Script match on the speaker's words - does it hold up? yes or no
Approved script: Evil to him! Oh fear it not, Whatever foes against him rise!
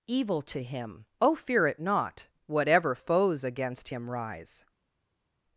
yes